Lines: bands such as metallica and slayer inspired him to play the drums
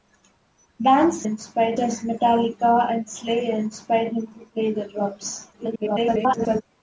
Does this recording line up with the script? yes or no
no